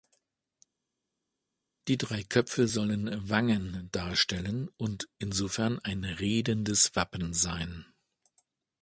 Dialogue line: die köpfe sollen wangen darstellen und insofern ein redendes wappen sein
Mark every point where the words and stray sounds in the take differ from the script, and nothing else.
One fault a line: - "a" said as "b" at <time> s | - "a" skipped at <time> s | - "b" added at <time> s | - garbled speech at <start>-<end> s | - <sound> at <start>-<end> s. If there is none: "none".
- "drei" added at 2.0 s